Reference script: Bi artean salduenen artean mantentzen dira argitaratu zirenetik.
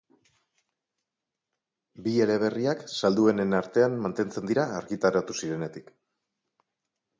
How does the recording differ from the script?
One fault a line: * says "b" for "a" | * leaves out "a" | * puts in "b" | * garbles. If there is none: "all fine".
* says "eleberriak" for "artean"